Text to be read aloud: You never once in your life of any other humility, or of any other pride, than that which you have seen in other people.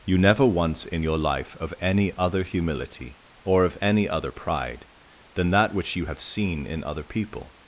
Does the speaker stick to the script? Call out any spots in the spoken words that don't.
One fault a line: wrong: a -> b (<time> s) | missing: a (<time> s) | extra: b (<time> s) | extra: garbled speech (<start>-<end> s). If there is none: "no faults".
no faults